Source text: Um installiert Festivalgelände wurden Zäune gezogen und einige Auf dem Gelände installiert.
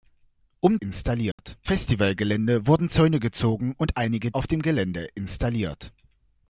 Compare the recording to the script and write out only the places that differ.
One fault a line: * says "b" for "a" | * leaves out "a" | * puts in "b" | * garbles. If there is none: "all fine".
all fine